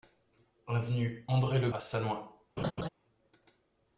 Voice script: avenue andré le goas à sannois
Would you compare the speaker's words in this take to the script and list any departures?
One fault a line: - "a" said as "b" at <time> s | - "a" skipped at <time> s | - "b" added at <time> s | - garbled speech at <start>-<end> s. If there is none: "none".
- "goas" skipped at 1.7 s